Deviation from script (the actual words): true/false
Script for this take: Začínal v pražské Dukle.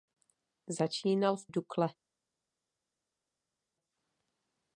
true